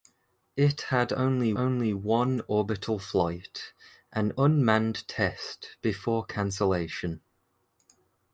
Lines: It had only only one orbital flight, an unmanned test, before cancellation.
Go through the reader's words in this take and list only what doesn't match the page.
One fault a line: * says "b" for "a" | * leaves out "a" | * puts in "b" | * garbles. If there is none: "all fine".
all fine